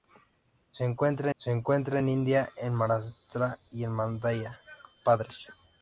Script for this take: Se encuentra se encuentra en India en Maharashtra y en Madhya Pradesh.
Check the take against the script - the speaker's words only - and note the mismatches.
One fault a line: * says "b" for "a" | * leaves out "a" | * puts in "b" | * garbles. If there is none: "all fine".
all fine